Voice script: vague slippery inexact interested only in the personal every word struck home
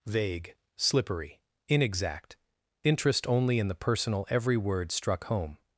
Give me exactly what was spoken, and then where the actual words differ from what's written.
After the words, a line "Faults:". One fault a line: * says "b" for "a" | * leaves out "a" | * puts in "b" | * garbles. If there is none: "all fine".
vague slippery inexact interest only in the personal every word struck home
Faults:
* says "interest" for "interested"